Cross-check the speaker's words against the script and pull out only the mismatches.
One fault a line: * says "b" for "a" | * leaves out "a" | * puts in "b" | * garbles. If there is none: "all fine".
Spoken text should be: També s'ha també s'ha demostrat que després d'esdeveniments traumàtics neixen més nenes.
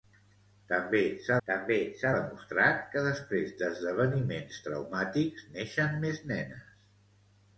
all fine